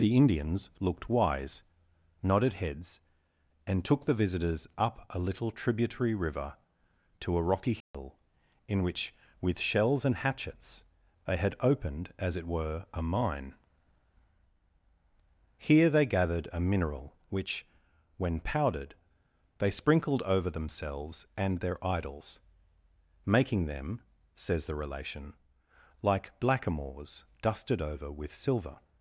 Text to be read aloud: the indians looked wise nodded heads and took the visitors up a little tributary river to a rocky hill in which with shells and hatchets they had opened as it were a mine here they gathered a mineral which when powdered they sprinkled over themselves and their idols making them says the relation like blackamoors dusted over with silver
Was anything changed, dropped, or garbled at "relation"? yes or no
no